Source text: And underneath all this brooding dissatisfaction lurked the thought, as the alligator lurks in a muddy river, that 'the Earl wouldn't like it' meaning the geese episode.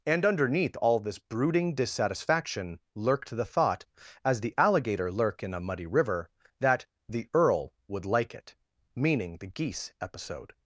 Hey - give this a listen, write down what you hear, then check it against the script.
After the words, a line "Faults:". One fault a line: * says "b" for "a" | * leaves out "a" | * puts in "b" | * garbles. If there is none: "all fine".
And underneath all this brooding dissatisfaction lurked the thought, as the alligator lurk in a muddy river, that 'the Earl would like it' meaning the geese episode.
Faults:
* says "lurk" for "lurks"
* says "would" for "wouldn't"